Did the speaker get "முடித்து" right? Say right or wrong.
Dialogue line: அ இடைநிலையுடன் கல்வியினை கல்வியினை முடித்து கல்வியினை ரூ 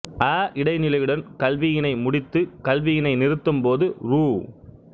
wrong